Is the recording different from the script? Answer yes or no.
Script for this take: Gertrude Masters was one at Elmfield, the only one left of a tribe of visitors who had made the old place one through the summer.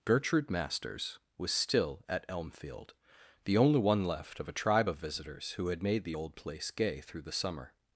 yes